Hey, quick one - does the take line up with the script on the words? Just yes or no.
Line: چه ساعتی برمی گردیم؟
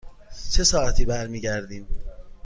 yes